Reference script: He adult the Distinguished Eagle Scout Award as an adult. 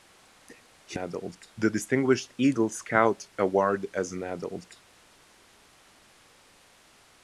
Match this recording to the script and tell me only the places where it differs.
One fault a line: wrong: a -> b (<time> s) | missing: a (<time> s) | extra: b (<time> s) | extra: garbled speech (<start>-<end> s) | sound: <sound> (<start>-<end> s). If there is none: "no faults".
no faults